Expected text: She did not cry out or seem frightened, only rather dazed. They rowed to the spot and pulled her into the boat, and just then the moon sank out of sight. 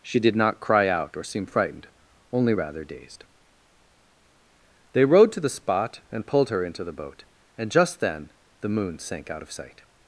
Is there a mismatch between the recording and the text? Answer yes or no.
no